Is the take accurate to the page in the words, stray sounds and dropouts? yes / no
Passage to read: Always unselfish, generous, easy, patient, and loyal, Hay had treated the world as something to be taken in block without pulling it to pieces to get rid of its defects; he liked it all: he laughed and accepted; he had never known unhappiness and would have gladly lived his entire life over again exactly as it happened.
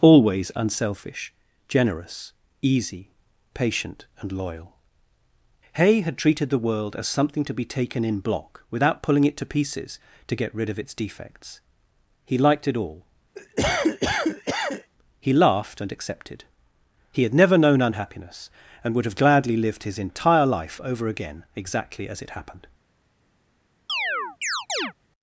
no